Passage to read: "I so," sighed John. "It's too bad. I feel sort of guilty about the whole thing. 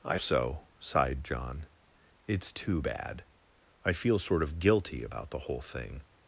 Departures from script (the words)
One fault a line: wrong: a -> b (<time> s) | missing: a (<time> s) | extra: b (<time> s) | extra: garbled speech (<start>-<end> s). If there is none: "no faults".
no faults